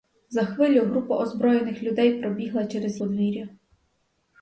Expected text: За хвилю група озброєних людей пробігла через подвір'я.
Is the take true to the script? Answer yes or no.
yes